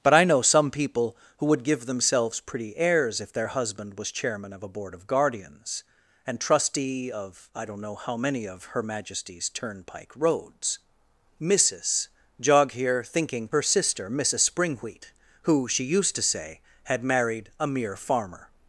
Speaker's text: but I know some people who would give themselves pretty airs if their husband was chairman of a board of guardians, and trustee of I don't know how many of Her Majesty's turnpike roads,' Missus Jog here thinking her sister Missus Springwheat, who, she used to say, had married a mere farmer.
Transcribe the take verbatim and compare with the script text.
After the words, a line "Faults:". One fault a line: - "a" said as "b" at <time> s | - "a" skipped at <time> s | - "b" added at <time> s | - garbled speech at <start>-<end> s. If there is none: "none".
but I know some people who would give themselves pretty airs if their husband was chairman of a board of guardians, and trustee of I don't know how many of Her Majesty's turnpike roads,' Missus Jog here thinking her sister Missus Springwheat, who, she used to say, had married a mere farmer.
Faults:
none